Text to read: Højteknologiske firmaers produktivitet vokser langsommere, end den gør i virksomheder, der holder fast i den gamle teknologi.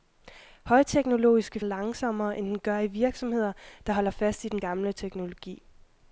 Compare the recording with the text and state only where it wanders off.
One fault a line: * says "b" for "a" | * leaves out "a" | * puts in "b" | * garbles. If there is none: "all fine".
* leaves out "firmaers produktivitet vokser"